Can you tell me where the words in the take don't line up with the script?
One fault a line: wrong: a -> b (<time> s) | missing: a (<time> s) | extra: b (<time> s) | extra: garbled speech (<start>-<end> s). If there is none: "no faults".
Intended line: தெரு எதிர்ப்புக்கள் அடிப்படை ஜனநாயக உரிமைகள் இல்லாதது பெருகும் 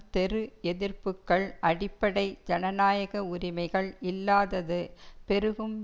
no faults